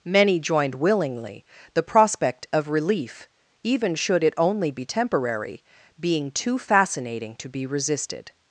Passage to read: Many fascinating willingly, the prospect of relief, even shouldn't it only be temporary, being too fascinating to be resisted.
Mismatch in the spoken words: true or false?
true